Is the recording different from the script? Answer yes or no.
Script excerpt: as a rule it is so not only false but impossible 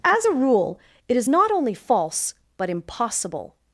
yes